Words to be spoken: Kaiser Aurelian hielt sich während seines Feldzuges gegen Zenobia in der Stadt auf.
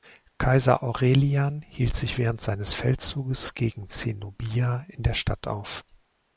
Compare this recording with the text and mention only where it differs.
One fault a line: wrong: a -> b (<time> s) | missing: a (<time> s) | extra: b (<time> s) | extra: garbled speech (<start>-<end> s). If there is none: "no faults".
no faults